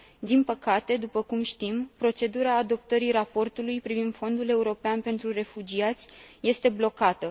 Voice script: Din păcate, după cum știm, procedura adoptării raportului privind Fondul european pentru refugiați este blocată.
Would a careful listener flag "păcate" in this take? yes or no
no